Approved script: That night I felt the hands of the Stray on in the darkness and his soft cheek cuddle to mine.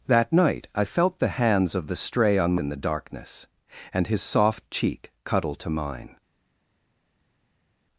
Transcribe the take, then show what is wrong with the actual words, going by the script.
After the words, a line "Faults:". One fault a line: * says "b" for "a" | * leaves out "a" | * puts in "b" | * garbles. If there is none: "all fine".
That night I felt the hands of the Stray on in the darkness and his soft cheek cuddle to mine.
Faults:
all fine